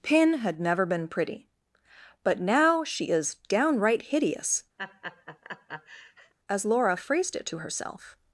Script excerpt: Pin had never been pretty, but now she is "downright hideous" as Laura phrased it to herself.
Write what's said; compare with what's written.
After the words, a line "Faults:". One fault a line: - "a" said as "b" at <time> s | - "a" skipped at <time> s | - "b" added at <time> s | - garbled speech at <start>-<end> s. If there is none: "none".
Pin had never been pretty, but now she is "downright hideous" as Laura phrased it to herself.
Faults:
none